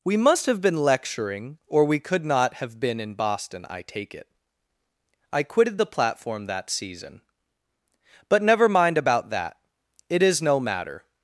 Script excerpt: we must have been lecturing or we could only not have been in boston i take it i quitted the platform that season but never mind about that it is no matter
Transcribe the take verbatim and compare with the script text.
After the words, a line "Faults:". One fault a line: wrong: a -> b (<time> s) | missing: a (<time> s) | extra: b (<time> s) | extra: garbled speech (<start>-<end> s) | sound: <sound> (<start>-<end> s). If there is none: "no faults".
we must have been lecturing or we could not have been in boston i take it i quitted the platform that season but never mind about that it is no matter
Faults:
missing: only (2.2 s)